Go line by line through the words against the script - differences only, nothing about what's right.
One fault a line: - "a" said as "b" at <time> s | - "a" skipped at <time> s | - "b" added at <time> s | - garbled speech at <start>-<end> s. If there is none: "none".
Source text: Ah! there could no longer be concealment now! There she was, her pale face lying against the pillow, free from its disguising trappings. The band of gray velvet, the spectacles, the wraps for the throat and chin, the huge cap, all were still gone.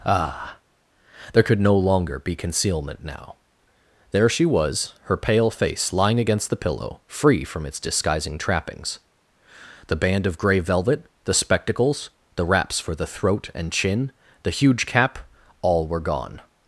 - "still" skipped at 16.0 s